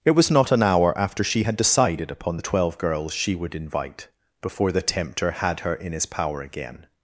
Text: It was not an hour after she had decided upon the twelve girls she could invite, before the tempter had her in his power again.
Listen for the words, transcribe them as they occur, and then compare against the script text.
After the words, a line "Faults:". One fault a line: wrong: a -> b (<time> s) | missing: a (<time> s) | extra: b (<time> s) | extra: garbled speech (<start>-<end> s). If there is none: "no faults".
It was not an hour after she had decided upon the twelve girls she would invite, before the tempter had her in his power again.
Faults:
wrong: could -> would (3.3 s)